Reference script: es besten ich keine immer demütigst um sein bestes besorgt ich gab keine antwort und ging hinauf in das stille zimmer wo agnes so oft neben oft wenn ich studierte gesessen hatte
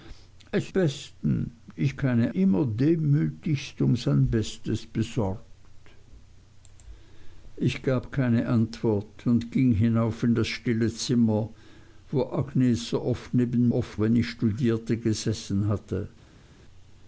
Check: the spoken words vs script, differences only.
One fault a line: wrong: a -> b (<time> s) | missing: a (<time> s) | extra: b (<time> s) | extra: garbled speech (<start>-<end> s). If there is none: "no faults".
no faults